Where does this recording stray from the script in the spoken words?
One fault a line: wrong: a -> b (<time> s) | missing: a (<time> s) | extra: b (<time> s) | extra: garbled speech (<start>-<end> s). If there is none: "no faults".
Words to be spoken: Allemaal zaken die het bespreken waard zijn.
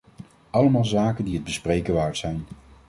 no faults